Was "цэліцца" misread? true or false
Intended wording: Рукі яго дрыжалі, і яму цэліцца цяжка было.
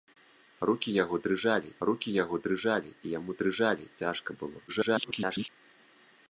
true